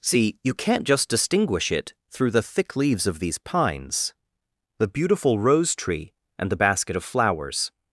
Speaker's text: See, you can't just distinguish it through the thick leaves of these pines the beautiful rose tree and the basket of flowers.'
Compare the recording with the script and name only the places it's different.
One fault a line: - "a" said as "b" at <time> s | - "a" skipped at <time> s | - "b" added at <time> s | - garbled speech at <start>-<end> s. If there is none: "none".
none